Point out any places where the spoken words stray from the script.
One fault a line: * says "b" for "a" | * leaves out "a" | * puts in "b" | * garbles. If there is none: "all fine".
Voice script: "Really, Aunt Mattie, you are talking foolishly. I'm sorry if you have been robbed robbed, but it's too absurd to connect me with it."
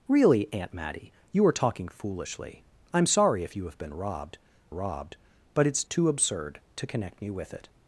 all fine